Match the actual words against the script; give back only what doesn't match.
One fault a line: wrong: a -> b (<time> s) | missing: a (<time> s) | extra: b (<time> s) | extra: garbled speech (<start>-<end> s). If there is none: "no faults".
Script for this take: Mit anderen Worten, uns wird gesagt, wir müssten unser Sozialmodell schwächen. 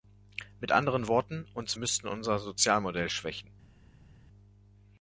missing: wird gesagt wir (1.8 s)